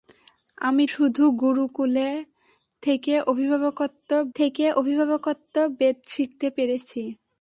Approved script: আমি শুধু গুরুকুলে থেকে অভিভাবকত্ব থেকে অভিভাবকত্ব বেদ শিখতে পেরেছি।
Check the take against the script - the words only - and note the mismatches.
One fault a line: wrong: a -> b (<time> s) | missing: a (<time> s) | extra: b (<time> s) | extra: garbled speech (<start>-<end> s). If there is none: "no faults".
no faults